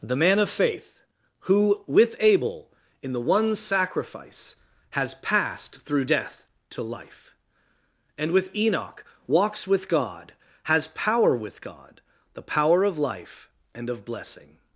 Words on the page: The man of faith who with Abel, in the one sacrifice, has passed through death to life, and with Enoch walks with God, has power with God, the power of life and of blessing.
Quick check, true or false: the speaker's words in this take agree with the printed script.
true